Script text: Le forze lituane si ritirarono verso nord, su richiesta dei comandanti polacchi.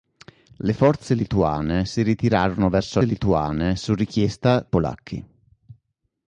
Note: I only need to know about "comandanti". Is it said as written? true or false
false